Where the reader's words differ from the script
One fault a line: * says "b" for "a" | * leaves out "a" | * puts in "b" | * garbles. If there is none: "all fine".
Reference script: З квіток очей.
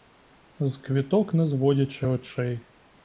* puts in "не зводячи"